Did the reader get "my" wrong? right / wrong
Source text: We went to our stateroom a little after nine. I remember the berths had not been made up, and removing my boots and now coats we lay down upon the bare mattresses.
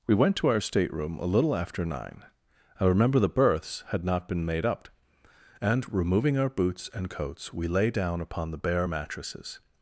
wrong